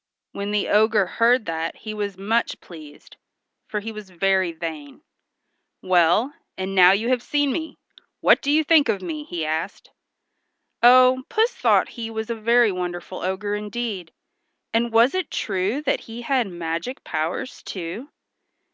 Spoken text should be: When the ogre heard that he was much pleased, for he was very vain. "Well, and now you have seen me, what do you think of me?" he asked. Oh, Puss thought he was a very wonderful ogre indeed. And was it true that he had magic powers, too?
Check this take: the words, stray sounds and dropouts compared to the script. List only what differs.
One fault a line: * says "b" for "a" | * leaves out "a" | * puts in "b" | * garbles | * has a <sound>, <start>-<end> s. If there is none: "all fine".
all fine